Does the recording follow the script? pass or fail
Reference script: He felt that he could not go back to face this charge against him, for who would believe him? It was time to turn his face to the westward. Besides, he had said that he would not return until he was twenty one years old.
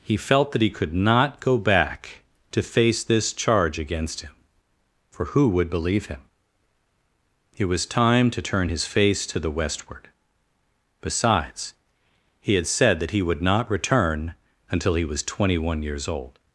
pass